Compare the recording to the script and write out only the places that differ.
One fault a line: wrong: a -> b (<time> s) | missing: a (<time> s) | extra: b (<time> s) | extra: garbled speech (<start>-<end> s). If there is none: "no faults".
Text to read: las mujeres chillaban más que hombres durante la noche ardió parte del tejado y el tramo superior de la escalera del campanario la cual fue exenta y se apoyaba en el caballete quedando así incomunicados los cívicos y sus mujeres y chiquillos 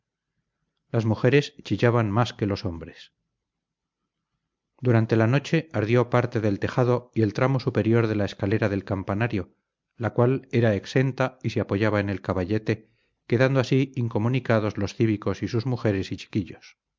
extra: los (2.5 s)
wrong: fue -> era (10.5 s)